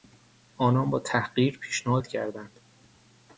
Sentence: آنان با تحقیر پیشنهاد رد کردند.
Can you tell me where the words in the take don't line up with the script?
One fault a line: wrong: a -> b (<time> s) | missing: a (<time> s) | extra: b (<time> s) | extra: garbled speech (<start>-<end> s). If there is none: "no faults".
no faults